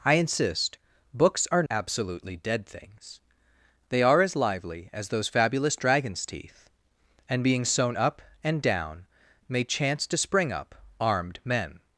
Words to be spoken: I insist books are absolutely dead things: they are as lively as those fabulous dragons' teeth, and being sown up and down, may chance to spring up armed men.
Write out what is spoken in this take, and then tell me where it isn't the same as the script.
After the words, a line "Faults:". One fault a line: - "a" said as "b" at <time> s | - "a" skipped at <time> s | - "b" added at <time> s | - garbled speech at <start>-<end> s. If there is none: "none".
I insist books are absolutely dead things: they are as lively as those fabulous dragons' teeth, and being sown up and down, may chance to spring up armed men.
Faults:
none